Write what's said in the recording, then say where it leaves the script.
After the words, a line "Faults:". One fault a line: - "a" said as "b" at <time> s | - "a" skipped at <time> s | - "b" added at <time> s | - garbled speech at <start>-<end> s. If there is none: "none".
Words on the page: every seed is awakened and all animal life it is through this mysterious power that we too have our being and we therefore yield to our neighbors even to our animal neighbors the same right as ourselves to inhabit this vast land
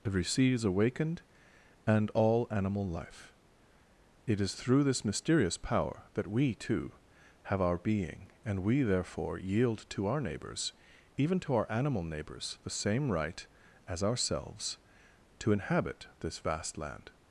every sea is awakened and all animal life it is through this mysterious power that we too have our being and we therefore yield to our neighbors even to our animal neighbors the same right as ourselves to inhabit this vast land
Faults:
- "seed" said as "sea" at 0.2 s